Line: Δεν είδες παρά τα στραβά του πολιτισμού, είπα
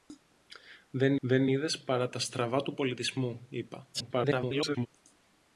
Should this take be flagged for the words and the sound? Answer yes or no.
yes